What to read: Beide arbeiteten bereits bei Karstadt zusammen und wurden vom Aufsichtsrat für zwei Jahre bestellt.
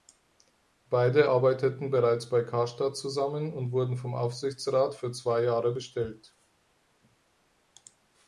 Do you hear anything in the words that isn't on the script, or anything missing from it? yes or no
no